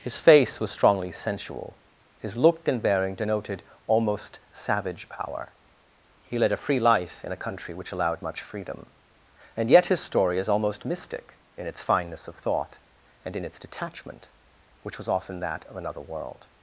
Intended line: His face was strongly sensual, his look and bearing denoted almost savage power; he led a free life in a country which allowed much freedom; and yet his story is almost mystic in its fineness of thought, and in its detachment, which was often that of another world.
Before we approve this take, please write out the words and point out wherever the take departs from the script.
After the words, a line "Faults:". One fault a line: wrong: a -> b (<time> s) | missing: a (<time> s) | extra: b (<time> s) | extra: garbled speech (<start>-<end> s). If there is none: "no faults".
His face was strongly sensual, his look and bearing denoted almost savage power; he led a free life in a country which allowed much freedom; and yet his story is almost mystic in its fineness of thought, and in its detachment, which was often that of another world.
Faults:
no faults